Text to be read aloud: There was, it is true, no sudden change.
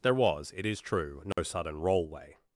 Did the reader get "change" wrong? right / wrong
wrong